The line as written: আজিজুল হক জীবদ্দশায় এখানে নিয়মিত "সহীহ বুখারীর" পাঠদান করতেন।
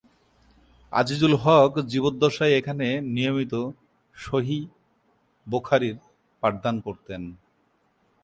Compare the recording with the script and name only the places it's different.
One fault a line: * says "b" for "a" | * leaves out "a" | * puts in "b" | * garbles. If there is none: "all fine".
all fine